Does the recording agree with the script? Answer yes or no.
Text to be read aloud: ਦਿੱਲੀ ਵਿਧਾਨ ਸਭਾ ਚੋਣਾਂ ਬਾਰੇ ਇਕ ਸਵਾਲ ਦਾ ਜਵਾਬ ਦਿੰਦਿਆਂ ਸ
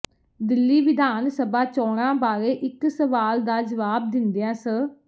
yes